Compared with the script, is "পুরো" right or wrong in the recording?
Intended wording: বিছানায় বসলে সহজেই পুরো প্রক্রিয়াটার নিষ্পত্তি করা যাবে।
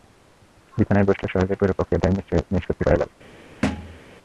right